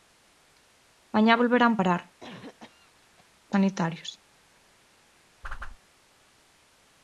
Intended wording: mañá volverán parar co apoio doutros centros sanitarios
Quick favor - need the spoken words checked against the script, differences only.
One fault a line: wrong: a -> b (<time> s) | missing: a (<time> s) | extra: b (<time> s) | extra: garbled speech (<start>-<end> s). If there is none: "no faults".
missing: apoio doutros centros (3.5 s)